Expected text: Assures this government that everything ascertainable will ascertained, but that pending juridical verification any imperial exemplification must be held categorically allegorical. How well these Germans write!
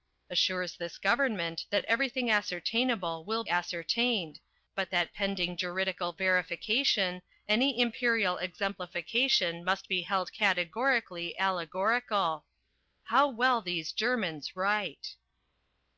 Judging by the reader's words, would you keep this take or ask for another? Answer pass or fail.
pass